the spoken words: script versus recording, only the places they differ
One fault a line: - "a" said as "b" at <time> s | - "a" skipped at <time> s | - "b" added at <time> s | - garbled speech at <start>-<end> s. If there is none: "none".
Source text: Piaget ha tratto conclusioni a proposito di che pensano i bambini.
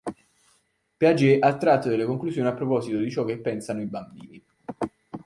- "delle" added at 1.9 s
- "ciò" added at 3.1 s